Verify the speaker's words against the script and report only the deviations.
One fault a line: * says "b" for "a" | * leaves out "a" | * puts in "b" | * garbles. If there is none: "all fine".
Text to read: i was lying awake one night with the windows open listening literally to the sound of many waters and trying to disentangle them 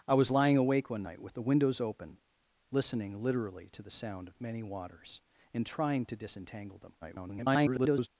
* garbles